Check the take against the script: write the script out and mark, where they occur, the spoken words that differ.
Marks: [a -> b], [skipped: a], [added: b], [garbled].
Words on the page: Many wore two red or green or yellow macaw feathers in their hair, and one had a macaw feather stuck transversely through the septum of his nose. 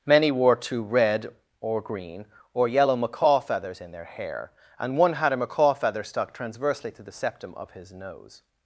Many wore two red or green or yellow macaw feathers in their hair, and one had a macaw feather stuck transversely [through -> to] the septum of his nose.